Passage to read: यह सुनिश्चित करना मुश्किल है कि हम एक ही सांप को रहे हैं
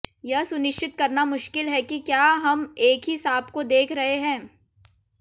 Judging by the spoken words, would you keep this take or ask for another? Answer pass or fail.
fail